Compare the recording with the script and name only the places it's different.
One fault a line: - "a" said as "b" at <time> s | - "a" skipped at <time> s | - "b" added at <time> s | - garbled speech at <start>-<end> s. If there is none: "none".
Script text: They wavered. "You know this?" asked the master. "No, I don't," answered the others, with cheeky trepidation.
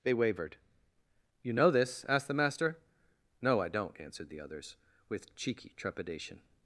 none